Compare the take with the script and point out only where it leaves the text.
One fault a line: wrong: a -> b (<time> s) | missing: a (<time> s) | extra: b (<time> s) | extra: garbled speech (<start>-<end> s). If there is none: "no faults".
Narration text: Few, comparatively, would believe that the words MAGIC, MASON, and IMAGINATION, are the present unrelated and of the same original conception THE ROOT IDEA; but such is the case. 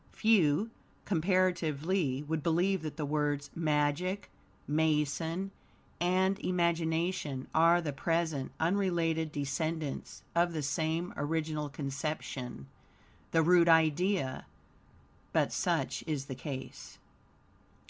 wrong: and -> descendants (9.3 s)